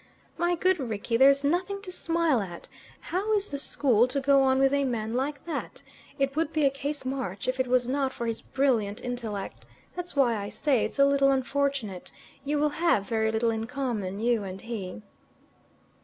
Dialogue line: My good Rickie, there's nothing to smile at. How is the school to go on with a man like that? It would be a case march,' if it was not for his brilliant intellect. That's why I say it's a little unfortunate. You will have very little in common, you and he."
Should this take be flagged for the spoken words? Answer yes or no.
no